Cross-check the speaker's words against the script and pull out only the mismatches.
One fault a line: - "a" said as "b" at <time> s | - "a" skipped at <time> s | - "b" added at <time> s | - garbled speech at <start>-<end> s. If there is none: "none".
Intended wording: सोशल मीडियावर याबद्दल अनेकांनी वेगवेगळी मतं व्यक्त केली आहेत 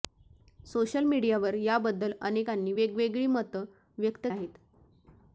- "केली" skipped at 4.3 s